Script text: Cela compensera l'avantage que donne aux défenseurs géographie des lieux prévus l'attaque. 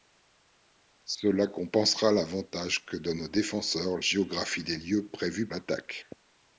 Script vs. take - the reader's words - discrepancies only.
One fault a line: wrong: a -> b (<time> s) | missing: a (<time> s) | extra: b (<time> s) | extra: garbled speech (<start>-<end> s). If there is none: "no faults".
no faults